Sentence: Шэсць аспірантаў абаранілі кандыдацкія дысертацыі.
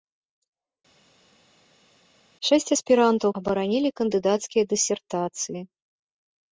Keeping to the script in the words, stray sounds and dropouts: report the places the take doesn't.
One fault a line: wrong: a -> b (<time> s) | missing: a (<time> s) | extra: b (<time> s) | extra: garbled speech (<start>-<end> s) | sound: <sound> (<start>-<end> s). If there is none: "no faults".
no faults